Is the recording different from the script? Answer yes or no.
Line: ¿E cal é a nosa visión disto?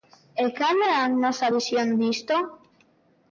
no